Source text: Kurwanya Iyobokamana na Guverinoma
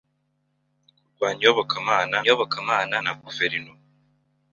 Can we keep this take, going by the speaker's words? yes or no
no